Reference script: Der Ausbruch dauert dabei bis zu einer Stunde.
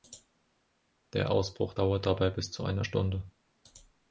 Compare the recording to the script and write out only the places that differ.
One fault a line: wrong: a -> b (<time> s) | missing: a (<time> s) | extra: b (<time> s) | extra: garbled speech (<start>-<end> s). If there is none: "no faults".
no faults